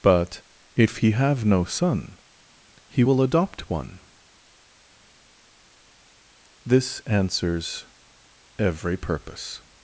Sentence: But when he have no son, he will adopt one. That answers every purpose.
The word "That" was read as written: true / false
false